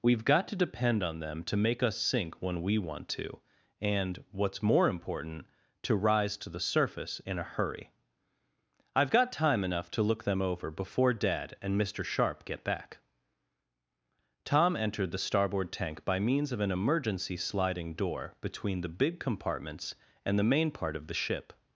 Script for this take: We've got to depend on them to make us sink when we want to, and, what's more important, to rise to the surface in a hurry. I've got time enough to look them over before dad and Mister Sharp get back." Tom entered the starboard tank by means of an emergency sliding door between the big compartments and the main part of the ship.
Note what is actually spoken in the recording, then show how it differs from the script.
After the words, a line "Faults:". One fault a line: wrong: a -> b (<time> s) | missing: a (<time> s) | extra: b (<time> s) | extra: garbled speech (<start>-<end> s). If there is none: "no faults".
We've got to depend on them to make us sink when we want to, and, what's more important, to rise to the surface in a hurry. I've got time enough to look them over before dad and Mister Sharp get back." Tom entered the starboard tank by means of an emergency sliding door between the big compartments and the main part of the ship.
Faults:
no faults